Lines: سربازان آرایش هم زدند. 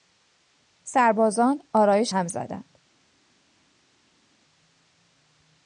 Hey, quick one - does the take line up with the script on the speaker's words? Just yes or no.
yes